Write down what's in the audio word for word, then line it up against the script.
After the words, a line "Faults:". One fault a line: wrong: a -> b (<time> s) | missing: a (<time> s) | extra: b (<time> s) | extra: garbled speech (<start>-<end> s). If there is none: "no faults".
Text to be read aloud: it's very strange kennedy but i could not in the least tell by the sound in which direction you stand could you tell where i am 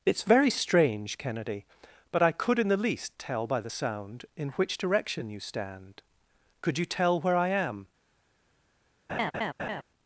it's very strange kennedy but i could in the least tell by the sound in which direction you stand could you tell where i am
Faults:
missing: not (2.6 s)